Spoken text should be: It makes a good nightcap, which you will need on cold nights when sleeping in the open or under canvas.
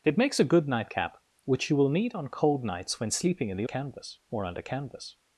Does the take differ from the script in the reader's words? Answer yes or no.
yes